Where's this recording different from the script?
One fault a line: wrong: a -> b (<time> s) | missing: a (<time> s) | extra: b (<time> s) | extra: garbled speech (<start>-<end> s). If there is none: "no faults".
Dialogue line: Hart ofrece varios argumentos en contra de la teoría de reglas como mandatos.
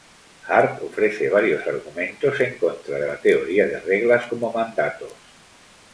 no faults